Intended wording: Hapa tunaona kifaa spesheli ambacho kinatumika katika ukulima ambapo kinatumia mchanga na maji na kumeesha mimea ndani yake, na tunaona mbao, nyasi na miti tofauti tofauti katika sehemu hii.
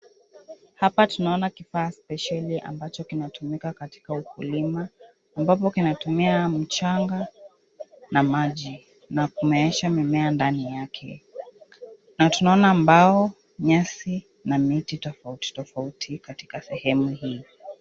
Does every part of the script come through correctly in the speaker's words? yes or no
yes